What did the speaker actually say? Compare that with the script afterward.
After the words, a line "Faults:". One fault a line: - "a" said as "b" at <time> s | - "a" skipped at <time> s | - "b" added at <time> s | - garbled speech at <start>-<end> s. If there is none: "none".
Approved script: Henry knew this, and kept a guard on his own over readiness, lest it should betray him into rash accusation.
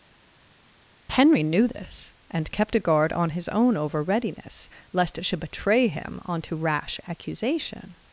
Henry knew this, and kept a guard on his own over readiness, lest it should betray him onto rash accusation.
Faults:
- "into" said as "onto" at 6.2 s